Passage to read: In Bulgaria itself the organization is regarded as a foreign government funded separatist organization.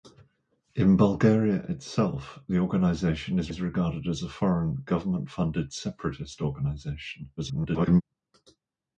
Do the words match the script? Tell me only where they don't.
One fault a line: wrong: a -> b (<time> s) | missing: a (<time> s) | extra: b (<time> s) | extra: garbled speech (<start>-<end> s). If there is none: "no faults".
extra: is (3.5 s)
extra: garbled speech (7.4-8.0 s)